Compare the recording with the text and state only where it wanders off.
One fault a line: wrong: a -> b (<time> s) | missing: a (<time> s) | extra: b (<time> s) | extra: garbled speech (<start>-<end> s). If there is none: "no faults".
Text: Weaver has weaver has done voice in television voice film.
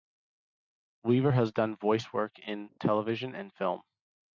missing: weaver has (1.5 s)
extra: work (2.1 s)
wrong: voice -> and (3.3 s)